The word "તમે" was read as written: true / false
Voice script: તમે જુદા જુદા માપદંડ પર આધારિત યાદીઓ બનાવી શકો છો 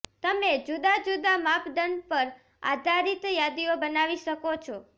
true